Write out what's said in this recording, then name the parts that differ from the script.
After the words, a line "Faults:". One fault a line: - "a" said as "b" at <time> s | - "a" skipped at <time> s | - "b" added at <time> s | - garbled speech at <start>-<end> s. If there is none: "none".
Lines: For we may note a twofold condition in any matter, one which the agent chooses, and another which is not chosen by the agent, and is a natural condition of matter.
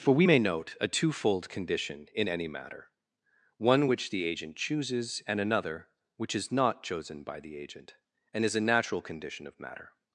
For we may note a twofold condition in any matter, one which the agent chooses, and another which is not chosen by the agent, and is a natural condition of matter.
Faults:
none